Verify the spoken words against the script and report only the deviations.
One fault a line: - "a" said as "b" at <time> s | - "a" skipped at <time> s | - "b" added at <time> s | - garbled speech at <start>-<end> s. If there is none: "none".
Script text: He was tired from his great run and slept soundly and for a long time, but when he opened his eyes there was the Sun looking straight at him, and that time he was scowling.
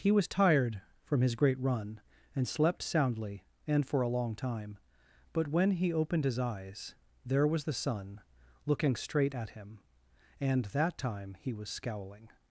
none